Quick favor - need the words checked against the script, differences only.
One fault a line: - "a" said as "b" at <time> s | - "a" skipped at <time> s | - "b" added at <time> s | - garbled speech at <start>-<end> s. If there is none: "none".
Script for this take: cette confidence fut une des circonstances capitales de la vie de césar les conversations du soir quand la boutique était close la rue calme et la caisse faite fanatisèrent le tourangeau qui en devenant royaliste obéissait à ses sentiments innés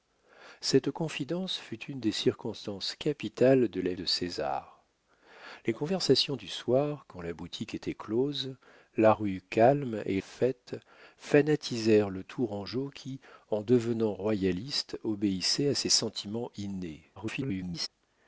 - "vie" skipped at 3.9 s
- "la caisse" skipped at 10.2 s
- garbled speech at 17.2-17.9 s